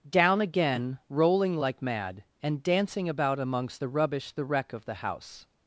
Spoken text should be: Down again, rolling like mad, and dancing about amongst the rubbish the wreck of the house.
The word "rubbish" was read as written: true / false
true